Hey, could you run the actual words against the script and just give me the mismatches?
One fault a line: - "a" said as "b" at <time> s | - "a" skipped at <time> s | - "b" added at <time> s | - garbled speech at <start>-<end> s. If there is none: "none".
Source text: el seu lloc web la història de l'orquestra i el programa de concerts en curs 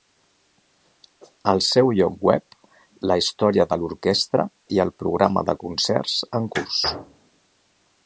none